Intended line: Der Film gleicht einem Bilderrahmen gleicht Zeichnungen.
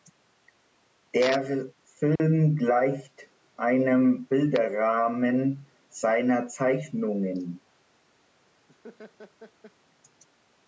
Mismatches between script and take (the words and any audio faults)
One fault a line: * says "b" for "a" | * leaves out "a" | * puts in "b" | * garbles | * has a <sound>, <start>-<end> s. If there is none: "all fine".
* has a dropout, 2.2-2.2 s
* says "seiner" for "gleicht"
* has a laugh, 8.7-9.7 s